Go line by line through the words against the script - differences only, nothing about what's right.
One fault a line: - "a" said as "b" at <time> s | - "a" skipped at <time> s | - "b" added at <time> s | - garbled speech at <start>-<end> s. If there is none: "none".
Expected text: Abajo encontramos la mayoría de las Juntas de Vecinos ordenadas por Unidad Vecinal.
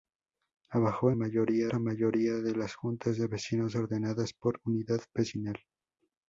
- "encontramos" said as "mayoría" at 1.1 s